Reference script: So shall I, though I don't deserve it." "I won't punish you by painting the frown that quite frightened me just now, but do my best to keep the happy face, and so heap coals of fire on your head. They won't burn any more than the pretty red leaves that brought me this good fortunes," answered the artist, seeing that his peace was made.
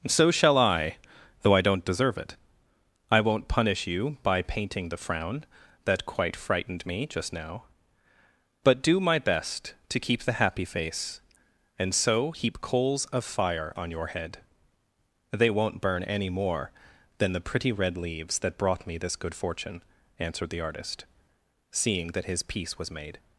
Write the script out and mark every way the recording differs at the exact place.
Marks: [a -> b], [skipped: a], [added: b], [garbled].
So shall I, though I don't deserve it." "I won't punish you by painting the frown that quite frightened me just now, but do my best to keep the happy face, and so heap coals of fire on your head. They won't burn any more than the pretty red leaves that brought me this good [fortunes," -> fortune] answered the artist, seeing that his peace was made.